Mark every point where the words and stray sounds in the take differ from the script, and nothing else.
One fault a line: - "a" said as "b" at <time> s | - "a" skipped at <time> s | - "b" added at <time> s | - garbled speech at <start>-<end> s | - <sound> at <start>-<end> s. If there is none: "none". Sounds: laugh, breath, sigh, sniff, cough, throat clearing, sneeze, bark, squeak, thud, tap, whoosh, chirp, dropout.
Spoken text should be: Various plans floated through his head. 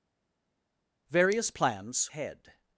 - "floated through his" skipped at 2.1 s